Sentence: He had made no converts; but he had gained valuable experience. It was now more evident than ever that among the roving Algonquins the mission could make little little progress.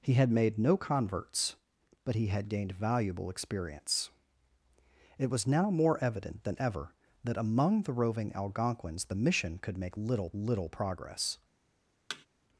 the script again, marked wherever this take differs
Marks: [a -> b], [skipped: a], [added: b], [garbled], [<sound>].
He had made no converts; but he had gained valuable experience. It was now more evident than ever that among the roving Algonquins the mission could make little little progress. [thud]